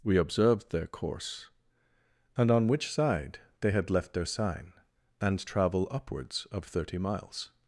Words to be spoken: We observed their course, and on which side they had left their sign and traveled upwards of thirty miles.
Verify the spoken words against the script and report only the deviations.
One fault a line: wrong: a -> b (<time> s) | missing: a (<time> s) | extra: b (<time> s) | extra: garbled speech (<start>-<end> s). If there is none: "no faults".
wrong: traveled -> travel (5.5 s)